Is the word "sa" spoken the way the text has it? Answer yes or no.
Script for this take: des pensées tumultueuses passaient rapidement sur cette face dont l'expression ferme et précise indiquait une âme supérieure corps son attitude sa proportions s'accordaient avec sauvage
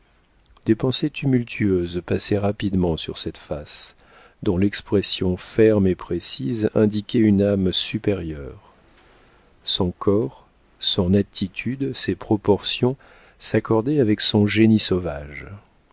no